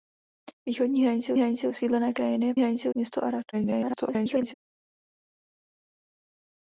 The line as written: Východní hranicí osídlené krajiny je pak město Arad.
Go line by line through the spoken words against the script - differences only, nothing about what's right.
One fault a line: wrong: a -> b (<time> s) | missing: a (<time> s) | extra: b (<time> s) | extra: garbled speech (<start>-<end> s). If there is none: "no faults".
extra: hranicí (1.4 s)
wrong: pak -> hranicí (2.6 s)
extra: garbled speech (3.5-4.5 s)